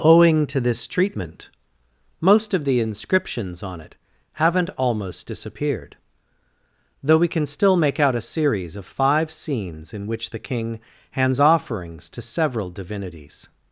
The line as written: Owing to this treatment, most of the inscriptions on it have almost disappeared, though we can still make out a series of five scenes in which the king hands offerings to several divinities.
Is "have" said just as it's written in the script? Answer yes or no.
no